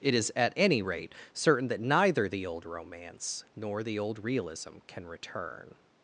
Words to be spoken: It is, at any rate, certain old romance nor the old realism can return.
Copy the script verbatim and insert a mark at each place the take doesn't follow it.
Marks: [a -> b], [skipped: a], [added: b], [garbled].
It is, at any rate, certain [added: that neither the] old romance nor the old realism can return.